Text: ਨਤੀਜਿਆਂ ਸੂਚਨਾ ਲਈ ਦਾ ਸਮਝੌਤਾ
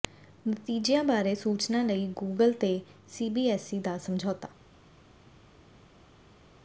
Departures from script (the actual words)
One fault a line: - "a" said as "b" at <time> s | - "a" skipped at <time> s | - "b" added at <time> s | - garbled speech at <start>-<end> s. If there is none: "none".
- "ਬਾਰੇ" added at 1.0 s
- "ਗੂਗਲ ਤੇ ਸੀਬੀਐਸਈ" added at 2.2 s